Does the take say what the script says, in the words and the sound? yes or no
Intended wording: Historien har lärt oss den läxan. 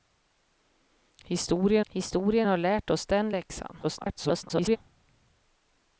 no